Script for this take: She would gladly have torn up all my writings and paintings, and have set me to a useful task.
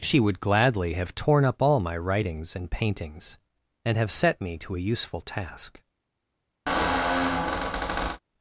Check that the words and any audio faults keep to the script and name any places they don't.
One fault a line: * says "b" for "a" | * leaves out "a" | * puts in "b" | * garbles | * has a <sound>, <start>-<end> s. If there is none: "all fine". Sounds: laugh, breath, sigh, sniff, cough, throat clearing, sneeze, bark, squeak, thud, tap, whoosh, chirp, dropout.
* has a squeak, 6.7-8.2 s